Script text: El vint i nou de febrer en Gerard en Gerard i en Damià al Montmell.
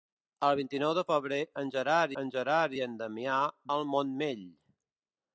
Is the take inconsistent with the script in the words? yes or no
no